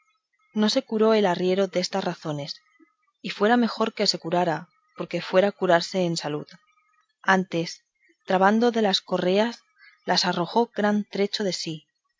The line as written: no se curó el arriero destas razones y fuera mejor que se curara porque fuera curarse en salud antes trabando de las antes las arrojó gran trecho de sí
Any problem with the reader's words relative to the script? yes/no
yes